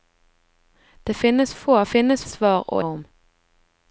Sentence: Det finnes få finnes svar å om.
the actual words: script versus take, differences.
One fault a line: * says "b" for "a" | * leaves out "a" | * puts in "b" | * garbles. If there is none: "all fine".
all fine